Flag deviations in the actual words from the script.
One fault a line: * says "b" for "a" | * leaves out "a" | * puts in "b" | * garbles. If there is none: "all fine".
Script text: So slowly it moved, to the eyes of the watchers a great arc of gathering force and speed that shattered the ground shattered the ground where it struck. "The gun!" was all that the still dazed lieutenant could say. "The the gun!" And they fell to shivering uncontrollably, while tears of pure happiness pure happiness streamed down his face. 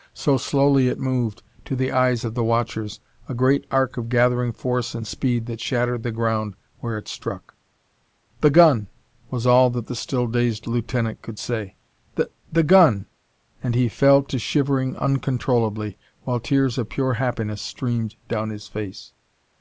* leaves out "shattered the ground"
* says "he" for "they"
* leaves out "pure happiness"